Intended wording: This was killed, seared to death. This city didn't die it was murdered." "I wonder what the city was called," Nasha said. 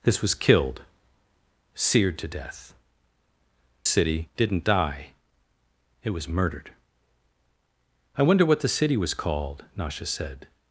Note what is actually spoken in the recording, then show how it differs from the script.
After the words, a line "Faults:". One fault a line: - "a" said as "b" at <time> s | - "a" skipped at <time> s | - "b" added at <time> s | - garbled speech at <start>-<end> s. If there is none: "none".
This was killed, seared to death. City didn't die it was murdered." "I wonder what the city was called," Nasha said.
Faults:
- "This" skipped at 2.7 s